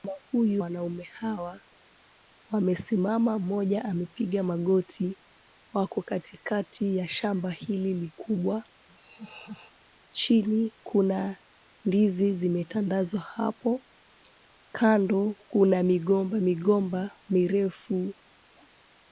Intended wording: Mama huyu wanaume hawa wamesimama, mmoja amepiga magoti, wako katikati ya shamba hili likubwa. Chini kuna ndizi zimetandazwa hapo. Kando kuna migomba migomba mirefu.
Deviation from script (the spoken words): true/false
false